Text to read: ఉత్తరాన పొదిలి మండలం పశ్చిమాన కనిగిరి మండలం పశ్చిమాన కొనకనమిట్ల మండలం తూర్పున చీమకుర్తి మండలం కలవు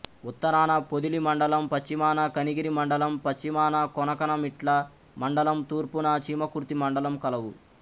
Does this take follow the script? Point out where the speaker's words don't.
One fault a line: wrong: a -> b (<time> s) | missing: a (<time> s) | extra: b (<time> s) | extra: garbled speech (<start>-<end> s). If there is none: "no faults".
no faults